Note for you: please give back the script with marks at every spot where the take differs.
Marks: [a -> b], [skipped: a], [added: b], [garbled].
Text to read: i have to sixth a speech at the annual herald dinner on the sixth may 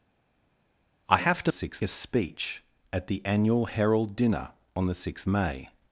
i have to sixth a speech at the annual herald dinner on the sixth may